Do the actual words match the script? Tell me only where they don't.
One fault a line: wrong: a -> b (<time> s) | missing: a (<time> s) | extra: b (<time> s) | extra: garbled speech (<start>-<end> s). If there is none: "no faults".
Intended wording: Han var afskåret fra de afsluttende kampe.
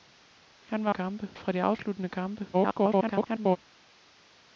wrong: afskåret -> kampe (0.9 s)
extra: garbled speech (2.5-3.6 s)